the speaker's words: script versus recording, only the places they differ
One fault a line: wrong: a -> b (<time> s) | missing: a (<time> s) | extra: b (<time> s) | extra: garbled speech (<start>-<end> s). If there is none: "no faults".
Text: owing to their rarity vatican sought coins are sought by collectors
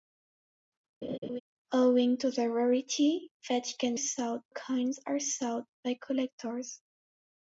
no faults